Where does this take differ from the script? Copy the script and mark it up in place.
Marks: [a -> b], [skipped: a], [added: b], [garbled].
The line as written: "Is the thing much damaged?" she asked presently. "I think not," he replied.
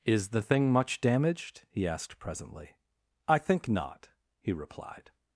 "Is the thing much damaged?" [she -> he] asked presently. "I think not," he replied.